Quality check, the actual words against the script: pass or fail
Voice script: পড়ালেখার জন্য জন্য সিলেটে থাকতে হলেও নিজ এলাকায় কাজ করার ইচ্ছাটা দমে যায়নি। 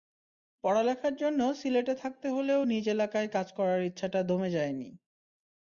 fail